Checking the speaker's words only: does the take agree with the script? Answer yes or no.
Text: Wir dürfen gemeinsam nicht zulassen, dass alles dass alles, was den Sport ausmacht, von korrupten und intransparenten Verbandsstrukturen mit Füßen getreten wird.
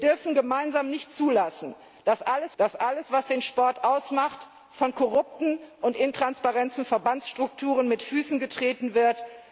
yes